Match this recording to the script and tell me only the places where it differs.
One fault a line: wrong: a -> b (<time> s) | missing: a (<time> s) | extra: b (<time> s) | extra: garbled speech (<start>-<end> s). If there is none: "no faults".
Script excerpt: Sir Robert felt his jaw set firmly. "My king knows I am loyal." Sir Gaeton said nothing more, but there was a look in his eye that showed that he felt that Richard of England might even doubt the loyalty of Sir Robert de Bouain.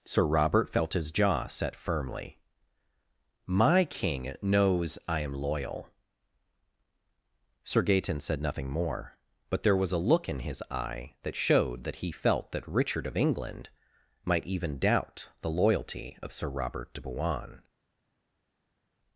no faults